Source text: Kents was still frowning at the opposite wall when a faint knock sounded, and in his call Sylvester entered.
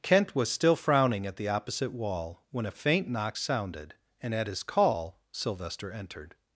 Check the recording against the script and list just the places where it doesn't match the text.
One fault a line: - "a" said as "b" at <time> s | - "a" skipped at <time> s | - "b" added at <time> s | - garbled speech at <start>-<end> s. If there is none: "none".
- "Kents" said as "Kent" at 0.0 s
- "in" said as "at" at 4.3 s